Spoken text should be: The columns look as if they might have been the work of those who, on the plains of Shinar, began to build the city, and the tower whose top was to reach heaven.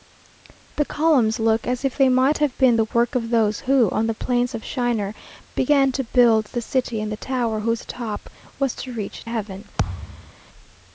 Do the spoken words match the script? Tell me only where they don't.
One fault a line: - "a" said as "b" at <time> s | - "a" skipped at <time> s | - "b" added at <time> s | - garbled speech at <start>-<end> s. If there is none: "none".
none